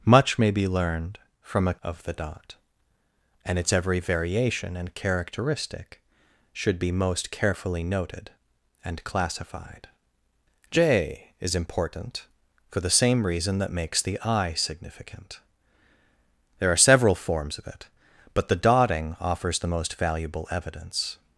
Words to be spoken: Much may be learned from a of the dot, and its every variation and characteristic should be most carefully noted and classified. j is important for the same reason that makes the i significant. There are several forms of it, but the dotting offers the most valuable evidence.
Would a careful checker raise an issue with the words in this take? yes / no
no